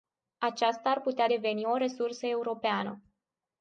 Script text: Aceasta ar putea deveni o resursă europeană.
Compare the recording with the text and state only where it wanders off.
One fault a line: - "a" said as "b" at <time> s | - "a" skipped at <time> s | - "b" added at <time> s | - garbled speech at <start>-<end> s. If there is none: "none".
none